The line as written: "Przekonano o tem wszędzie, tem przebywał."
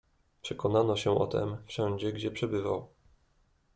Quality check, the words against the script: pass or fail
fail